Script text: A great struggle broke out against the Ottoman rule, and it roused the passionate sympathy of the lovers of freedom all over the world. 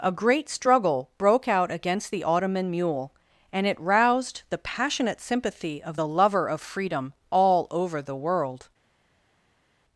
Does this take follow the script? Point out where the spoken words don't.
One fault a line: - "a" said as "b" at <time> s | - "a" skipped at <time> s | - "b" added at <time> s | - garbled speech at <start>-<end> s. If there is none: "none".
- "rule" said as "mule" at 2.7 s
- "lovers" said as "lover" at 6.1 s